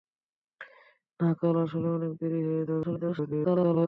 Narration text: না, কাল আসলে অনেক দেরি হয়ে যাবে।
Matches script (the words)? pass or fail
fail